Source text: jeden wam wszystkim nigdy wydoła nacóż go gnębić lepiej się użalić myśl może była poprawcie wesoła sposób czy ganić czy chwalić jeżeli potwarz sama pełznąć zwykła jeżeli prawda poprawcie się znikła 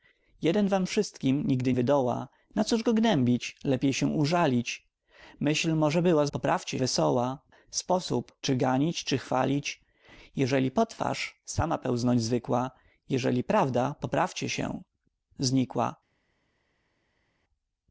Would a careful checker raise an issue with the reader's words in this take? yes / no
no